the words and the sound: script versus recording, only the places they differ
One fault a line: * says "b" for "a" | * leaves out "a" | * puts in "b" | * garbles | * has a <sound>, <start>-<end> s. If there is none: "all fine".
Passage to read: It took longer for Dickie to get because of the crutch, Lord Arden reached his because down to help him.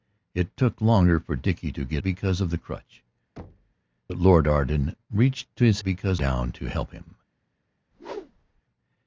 * has a thud, 3.4-3.7 s
* has a whoosh, 7.9-8.6 s